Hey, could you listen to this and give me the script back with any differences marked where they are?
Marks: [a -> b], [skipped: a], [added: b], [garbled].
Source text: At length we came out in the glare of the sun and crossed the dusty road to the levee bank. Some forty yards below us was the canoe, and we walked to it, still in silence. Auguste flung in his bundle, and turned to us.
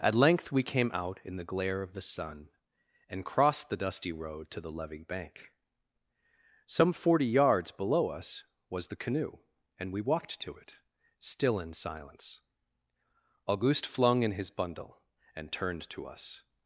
At length we came out in the glare of the sun and crossed the dusty road to the levee bank. Some forty yards below us was the canoe, and we walked to it, still in silence. Auguste flung in his bundle, and turned to us.